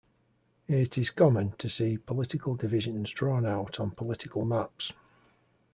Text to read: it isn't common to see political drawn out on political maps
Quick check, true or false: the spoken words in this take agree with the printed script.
false